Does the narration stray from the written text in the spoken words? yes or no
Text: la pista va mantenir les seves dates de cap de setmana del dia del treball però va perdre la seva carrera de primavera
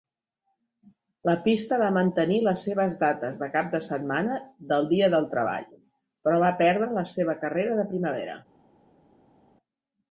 no